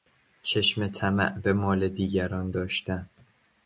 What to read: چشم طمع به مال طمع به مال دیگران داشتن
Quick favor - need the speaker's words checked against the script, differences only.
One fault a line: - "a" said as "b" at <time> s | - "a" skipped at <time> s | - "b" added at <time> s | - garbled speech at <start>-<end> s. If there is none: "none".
- "طمع به مال" skipped at 1.9 s